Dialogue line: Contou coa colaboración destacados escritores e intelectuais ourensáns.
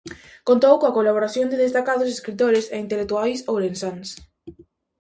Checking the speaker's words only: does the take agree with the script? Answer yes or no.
no